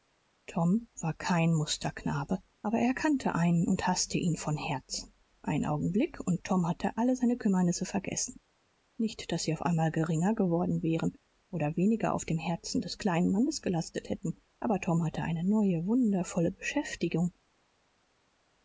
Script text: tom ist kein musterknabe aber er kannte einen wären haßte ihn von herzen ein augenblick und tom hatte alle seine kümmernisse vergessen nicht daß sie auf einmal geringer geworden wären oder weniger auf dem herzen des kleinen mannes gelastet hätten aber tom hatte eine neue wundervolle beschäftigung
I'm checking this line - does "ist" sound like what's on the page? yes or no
no